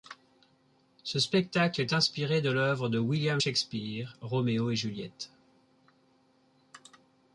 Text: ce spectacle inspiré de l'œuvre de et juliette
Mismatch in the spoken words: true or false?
true